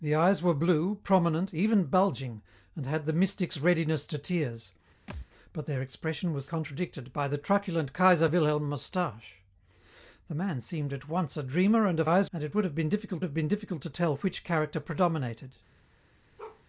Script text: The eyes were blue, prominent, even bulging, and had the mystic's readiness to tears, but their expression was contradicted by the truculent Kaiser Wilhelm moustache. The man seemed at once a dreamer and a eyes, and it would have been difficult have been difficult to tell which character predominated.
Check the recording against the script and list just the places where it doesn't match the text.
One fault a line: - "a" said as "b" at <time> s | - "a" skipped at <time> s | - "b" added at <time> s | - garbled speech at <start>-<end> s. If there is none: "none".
none